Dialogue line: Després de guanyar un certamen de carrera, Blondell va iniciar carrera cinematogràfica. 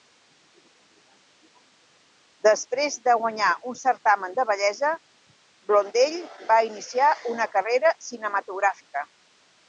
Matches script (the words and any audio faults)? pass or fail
fail